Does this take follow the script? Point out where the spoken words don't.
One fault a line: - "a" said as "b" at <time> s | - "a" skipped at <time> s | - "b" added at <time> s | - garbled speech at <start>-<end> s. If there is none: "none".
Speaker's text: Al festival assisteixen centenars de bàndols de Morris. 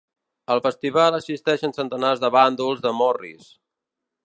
none